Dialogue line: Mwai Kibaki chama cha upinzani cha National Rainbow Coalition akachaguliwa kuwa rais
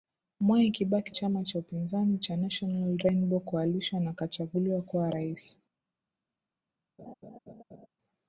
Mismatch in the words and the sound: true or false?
true